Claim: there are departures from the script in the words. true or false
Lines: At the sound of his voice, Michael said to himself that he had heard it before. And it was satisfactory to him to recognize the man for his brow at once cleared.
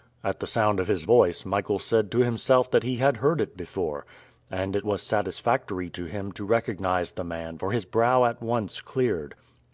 false